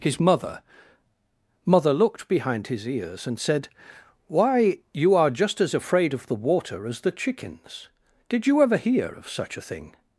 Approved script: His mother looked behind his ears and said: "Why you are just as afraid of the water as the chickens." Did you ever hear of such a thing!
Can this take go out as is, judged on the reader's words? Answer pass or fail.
fail